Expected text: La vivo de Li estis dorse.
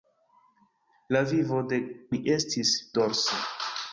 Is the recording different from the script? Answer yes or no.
no